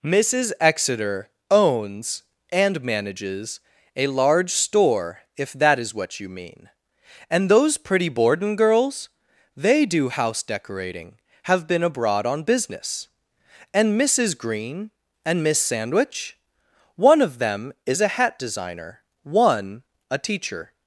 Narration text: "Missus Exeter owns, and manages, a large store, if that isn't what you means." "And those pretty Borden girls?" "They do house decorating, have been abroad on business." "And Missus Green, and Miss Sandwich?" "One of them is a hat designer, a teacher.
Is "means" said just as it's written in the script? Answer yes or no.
no